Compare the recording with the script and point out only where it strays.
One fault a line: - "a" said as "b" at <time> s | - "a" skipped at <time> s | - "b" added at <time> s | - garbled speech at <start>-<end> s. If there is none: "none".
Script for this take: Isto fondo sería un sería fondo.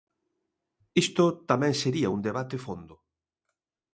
- "fondo" said as "tamén" at 1.5 s
- "sería" said as "debate" at 2.3 s